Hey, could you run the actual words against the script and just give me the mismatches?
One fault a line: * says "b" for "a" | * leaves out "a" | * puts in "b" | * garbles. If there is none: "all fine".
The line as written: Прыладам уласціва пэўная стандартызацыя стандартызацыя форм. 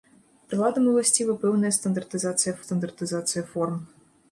all fine